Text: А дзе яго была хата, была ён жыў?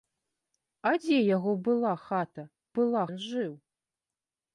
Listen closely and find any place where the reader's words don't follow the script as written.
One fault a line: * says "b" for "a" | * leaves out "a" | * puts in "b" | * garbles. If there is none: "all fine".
all fine